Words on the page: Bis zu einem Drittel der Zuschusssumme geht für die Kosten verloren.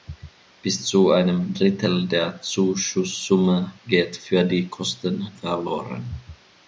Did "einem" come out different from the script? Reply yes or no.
no